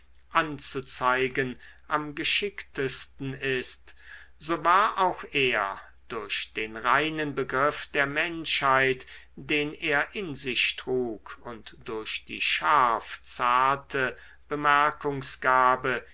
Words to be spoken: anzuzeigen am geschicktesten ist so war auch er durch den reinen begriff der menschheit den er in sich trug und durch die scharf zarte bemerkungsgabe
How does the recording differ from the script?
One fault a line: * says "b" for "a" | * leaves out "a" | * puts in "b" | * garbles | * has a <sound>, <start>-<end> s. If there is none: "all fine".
all fine